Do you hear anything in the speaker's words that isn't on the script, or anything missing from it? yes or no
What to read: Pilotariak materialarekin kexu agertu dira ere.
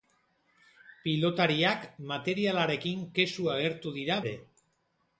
no